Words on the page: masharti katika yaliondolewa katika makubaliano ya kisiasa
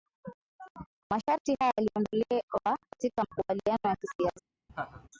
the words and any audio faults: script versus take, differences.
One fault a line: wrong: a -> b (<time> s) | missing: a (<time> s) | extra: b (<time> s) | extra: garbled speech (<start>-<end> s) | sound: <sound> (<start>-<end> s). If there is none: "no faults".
wrong: katika -> haya (1.6 s)
sound: laugh (4.7-5.1 s)